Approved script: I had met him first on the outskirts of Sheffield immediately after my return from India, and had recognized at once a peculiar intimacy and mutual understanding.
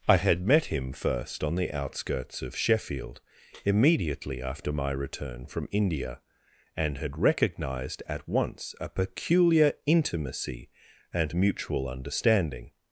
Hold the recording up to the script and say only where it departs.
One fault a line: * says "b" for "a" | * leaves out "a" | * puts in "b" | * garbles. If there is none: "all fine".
all fine